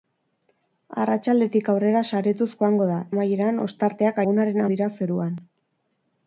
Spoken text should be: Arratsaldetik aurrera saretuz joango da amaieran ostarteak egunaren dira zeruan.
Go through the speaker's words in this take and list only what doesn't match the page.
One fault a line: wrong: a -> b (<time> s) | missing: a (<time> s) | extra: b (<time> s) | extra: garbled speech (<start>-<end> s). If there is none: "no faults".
no faults